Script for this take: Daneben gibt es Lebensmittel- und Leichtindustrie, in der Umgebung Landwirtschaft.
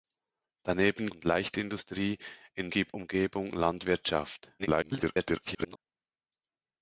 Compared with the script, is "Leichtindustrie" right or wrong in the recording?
right